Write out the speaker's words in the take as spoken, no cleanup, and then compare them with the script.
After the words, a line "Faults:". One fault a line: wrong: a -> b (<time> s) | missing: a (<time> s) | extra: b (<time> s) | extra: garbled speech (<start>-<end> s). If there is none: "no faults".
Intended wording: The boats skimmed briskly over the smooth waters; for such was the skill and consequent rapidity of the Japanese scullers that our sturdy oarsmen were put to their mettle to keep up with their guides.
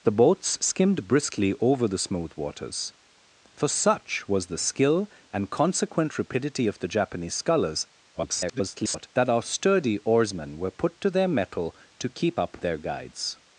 The boats skimmed briskly over the smooth waters; for such was the skill and consequent rapidity of the Japanese scullers [garbled] that our sturdy oarsmen were put to their mettle to keep up their guides.
Faults:
extra: garbled speech (8.1-9.1 s)
missing: with (12.6 s)